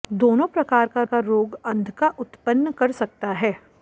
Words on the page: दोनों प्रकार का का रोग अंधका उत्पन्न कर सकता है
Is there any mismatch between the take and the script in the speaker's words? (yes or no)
no